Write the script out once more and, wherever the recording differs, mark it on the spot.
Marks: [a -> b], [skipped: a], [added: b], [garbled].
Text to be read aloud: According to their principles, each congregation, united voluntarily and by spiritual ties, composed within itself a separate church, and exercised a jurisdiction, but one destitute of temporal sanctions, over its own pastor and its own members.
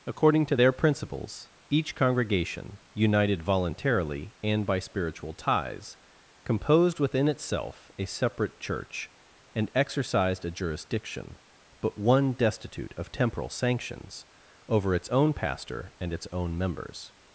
According to their principles, each congregation, united voluntarily and by spiritual ties, composed within itself a separate church, and exercised a jurisdiction, but one destitute of temporal sanctions, over its own pastor and its own members.